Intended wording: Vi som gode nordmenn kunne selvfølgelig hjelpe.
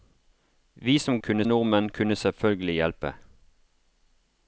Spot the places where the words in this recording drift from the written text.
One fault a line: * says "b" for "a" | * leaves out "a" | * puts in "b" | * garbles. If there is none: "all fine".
* says "kunne" for "gode"